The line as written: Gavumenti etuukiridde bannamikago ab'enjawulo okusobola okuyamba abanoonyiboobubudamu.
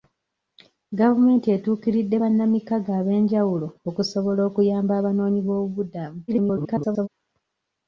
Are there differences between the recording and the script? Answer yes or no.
yes